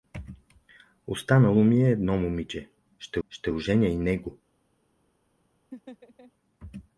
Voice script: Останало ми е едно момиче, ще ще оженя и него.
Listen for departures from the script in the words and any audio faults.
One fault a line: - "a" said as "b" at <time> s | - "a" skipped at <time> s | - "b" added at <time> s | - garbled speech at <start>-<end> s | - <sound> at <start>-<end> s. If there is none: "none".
- laugh at 5.7-6.3 s